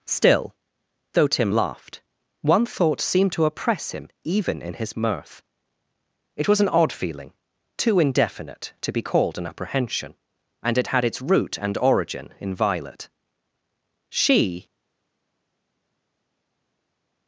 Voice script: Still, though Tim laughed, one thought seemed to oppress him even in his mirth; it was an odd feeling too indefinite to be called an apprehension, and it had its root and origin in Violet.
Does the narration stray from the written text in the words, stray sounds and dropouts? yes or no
yes